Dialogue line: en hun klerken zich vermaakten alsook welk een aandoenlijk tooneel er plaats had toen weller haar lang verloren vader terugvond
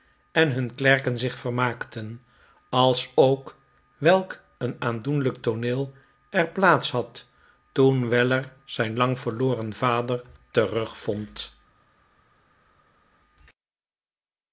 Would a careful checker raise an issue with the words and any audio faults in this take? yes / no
yes